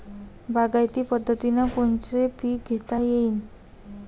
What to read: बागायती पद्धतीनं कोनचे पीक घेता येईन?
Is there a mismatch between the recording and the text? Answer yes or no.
no